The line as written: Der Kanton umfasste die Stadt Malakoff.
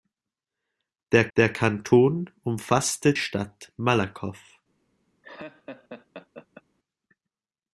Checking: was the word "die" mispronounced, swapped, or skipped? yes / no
yes